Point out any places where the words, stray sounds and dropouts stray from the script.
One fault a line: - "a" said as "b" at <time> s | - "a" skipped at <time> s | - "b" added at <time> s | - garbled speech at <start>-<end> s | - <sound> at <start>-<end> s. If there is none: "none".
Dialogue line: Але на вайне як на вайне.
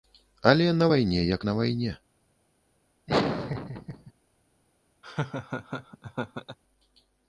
- laugh at 3.1-4.1 s
- laugh at 5.0-6.6 s